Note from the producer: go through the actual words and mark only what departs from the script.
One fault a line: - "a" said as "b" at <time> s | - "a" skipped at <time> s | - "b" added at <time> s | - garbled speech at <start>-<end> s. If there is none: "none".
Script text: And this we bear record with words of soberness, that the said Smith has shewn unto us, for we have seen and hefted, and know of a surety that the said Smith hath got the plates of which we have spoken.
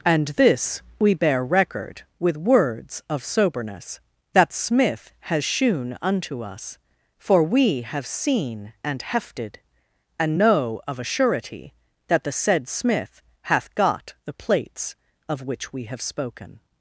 - "the said" skipped at 4.5 s